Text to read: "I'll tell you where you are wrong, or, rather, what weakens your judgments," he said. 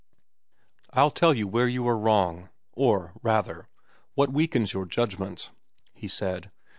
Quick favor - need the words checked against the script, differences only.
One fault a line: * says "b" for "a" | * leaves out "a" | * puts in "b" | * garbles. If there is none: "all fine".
all fine